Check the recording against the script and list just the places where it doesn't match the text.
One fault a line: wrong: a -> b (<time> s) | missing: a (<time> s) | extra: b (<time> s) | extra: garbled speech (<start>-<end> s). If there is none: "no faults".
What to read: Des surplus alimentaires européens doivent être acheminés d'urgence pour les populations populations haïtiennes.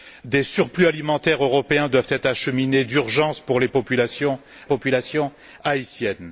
no faults